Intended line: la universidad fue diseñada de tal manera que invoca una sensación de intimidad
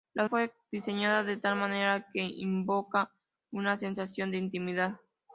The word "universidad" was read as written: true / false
false